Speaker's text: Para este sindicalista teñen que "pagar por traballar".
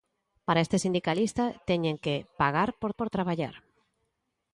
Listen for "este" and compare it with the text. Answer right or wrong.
right